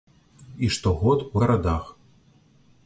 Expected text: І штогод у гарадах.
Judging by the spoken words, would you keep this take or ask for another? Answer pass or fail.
pass